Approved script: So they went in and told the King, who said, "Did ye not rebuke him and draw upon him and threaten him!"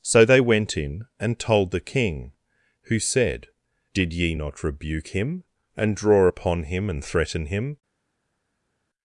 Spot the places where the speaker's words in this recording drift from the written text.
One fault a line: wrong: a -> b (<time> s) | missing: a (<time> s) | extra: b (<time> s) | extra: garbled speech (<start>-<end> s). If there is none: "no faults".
no faults